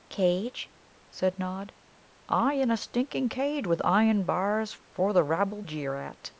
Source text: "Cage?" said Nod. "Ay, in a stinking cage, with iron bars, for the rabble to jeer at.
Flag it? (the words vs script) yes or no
yes